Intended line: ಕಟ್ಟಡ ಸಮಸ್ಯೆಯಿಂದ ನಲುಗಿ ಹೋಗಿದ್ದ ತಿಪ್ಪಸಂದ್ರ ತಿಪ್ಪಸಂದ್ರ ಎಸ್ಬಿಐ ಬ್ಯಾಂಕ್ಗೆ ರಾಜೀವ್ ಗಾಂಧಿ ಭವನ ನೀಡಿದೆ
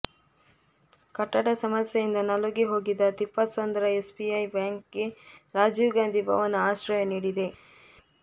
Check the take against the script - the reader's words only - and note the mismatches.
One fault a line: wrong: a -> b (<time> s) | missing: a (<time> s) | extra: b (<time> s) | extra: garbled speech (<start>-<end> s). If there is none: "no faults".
missing: ತಿಪ್ಪಸಂದ್ರ (3.9 s)
extra: ಆಶ್ರಯ (6.7 s)